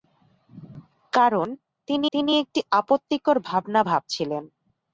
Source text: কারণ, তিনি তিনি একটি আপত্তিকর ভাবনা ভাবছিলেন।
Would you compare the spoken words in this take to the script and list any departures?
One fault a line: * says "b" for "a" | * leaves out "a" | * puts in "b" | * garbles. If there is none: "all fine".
all fine